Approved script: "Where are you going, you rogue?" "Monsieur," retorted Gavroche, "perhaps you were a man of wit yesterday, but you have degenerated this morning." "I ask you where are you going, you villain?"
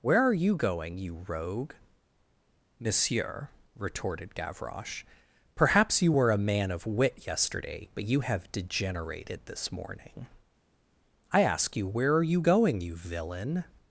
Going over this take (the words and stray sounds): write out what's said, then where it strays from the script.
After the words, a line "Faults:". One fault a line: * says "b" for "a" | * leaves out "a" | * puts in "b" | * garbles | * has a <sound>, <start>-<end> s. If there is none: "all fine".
"Where are you going, you rogue?" "Monsieur," retorted Gavroche, "perhaps you were a man of wit yesterday, but you have degenerated this morning." "I ask you where are you going, you villain?"
Faults:
all fine